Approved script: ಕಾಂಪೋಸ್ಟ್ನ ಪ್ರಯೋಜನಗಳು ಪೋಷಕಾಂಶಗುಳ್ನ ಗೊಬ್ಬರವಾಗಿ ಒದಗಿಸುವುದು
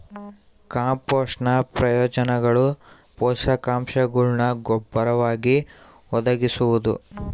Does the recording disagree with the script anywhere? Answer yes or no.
no